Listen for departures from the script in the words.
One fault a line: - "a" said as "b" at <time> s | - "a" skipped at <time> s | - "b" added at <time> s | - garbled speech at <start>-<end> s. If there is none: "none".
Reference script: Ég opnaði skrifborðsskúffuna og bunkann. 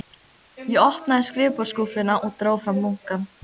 - "dró fram" added at 2.4 s